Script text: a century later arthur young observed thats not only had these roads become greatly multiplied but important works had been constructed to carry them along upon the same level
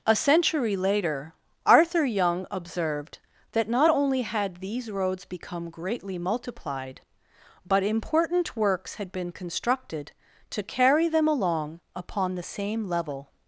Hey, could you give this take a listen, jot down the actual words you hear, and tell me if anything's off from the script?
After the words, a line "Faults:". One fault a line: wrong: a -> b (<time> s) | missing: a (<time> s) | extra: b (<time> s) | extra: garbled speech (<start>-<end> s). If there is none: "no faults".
a century later arthur young observed that not only had these roads become greatly multiplied but important works had been constructed to carry them along upon the same level
Faults:
wrong: thats -> that (3.5 s)